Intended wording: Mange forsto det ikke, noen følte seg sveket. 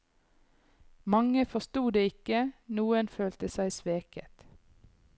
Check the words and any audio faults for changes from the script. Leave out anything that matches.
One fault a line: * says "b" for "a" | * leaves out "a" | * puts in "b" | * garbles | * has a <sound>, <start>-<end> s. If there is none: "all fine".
all fine